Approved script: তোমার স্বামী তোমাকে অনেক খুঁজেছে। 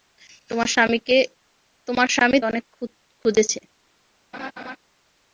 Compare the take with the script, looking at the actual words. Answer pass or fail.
fail